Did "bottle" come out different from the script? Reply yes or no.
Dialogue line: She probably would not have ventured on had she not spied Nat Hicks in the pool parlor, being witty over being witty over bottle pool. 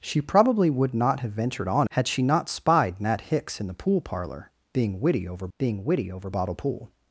no